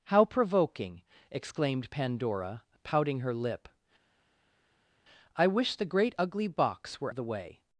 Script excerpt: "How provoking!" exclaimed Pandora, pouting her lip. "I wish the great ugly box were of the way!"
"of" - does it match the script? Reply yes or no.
yes